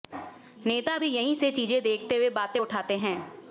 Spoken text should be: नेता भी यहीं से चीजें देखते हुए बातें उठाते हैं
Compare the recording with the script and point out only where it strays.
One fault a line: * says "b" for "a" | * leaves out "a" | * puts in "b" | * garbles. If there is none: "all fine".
all fine